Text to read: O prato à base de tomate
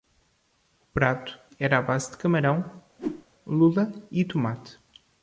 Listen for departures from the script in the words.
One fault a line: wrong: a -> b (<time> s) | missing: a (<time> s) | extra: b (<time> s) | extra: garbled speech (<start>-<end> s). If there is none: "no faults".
extra: era (1.6 s)
extra: camarão lula e (2.2 s)